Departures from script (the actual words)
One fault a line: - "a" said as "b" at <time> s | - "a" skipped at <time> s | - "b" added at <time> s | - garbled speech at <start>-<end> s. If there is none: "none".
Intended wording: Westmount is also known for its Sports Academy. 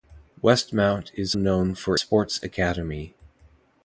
- "also" skipped at 1.4 s
- "its" skipped at 2.0 s